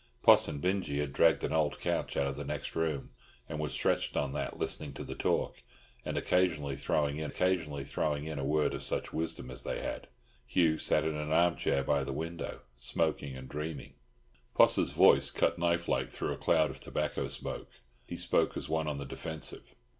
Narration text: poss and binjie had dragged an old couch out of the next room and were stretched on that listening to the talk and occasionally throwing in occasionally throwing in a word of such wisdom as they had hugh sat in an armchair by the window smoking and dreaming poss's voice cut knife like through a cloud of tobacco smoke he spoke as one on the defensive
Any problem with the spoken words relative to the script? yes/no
no